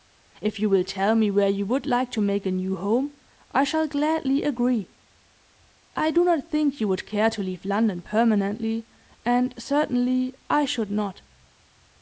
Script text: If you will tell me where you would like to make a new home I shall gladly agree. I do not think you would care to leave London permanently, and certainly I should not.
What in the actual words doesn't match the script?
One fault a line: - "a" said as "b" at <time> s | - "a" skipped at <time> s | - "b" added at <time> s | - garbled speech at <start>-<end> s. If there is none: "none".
none